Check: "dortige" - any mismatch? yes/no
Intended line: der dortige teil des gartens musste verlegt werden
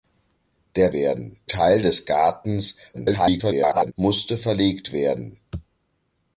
yes